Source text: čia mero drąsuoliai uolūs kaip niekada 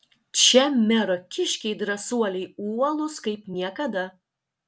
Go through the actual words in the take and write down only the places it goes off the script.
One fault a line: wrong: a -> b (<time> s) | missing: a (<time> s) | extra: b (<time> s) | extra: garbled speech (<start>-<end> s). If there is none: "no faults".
extra: kiškiai (1.4 s)